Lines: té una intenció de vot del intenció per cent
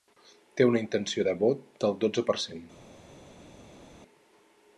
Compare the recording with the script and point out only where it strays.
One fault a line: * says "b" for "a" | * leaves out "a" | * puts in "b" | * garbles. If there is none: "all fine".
* says "dotze" for "intenció"